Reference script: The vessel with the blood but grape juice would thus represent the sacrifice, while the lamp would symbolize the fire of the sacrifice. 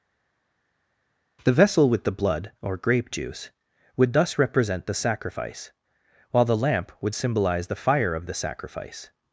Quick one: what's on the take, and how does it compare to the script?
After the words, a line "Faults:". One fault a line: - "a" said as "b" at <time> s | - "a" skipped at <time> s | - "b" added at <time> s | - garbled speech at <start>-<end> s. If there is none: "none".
The vessel with the blood or grape juice would thus represent the sacrifice, while the lamp would symbolize the fire of the sacrifice.
Faults:
- "but" said as "or" at 2.6 s